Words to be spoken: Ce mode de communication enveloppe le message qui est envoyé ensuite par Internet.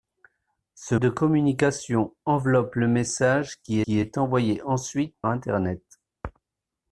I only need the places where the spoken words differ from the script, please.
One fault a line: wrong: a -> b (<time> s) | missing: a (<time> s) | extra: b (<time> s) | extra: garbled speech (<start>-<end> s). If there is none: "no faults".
missing: mode (0.9 s)
extra: qui (3.8 s)
missing: par (5.2 s)